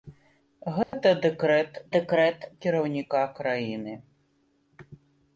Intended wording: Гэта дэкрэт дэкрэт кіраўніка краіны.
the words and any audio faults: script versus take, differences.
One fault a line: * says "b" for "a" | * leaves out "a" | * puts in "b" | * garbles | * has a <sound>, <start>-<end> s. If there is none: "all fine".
* has a dropout, 0.8-0.9 s